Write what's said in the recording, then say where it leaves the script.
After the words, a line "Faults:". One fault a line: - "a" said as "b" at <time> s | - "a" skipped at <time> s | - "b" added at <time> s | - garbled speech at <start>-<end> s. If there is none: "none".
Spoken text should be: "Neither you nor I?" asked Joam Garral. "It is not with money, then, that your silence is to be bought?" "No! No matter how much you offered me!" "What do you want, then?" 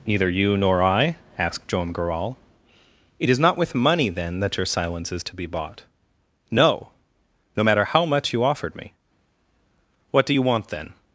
"Neither you nor I?" asked Joam Garral. "It is not with money, then, that your silence is to be bought?" "No! No matter how much you offered me!" "What do you want, then?"
Faults:
none